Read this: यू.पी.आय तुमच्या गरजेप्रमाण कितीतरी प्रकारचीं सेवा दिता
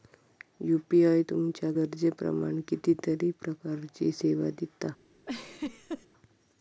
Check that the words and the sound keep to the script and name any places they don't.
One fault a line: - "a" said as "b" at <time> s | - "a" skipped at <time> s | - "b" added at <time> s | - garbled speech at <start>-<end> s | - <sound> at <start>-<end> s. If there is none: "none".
- laugh at 5.3-6.1 s